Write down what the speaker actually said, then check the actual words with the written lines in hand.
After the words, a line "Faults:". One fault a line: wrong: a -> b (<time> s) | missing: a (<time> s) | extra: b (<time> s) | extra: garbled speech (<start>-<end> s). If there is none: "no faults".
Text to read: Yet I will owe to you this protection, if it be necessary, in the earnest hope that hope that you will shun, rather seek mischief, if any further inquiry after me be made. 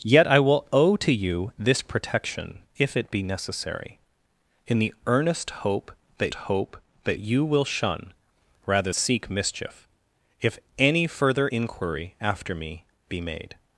Yet I will owe to you this protection, if it be necessary, in the earnest hope that hope that you will shun, rather seek mischief, if any further inquiry after me be made.
Faults:
no faults